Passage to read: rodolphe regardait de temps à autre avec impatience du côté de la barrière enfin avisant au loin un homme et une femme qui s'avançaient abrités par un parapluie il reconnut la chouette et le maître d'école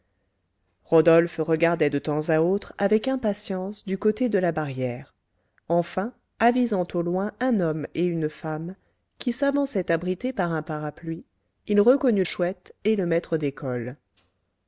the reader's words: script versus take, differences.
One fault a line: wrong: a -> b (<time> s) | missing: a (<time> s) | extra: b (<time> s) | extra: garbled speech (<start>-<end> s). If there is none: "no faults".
missing: la (12.2 s)